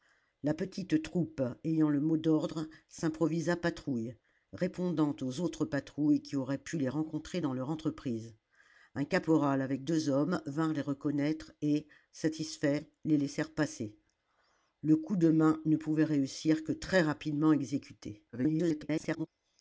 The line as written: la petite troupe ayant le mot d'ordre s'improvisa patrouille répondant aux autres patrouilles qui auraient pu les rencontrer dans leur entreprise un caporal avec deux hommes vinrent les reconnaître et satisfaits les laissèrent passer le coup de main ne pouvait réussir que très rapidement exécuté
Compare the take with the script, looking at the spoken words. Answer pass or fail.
fail